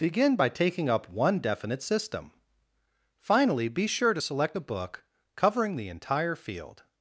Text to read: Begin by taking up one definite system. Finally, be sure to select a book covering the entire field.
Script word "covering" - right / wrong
right